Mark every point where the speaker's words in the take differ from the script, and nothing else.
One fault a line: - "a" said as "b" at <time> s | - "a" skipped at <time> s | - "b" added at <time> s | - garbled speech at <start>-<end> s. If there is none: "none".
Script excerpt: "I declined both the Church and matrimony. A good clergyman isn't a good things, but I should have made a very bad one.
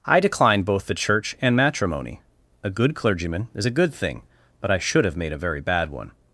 - "isn't" said as "is" at 3.5 s
- "things" said as "thing" at 3.9 s